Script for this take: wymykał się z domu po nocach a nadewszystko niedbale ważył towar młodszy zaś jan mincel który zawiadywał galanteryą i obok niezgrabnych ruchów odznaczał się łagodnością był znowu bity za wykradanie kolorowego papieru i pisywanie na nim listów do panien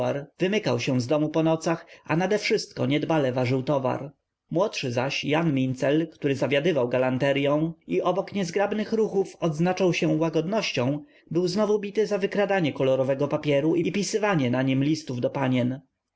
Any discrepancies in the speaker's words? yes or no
no